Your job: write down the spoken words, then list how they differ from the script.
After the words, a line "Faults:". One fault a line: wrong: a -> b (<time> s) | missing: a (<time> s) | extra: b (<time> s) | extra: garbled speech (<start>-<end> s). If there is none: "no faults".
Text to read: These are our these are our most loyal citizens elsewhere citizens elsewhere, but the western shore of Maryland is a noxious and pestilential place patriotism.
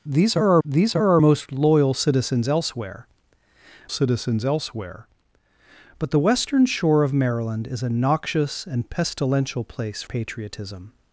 These are our these are our most loyal citizens elsewhere citizens elsewhere, but the western shore of Maryland is a noxious and pestilential place patriotism.
Faults:
no faults